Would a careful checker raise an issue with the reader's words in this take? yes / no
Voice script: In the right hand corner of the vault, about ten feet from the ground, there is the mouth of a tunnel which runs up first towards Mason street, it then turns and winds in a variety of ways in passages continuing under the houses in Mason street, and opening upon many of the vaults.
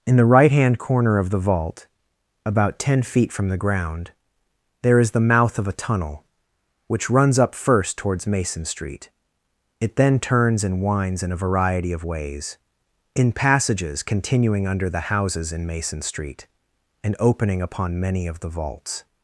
no